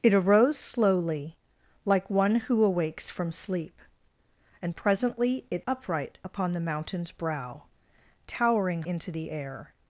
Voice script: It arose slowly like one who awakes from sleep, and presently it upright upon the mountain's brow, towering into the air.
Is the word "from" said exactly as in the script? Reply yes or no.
yes